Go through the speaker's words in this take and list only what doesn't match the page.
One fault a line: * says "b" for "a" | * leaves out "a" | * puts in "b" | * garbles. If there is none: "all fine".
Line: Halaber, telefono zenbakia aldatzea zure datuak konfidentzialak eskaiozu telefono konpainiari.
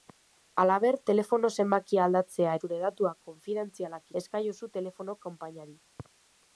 all fine